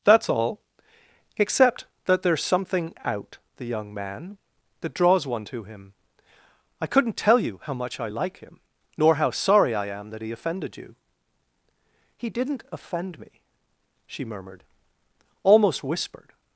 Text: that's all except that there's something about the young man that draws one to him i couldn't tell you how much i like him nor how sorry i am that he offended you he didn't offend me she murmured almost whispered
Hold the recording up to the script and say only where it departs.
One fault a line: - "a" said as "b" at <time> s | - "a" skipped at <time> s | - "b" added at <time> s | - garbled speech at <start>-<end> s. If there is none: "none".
- "about" said as "out" at 3.0 s